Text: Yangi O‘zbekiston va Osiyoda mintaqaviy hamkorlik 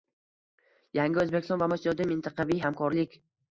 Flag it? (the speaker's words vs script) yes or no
no